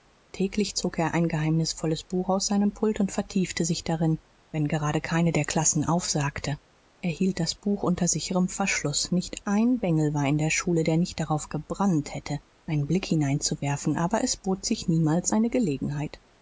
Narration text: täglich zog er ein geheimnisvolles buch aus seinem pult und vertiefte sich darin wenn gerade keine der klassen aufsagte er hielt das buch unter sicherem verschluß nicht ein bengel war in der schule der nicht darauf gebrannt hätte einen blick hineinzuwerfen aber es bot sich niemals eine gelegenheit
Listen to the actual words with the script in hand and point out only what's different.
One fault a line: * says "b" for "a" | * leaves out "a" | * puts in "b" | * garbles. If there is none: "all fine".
all fine